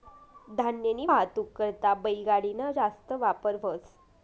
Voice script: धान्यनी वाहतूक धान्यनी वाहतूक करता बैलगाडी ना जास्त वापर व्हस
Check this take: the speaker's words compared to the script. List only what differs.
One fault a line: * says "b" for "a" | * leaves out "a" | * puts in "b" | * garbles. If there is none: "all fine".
* leaves out "धान्यनी वाहतूक"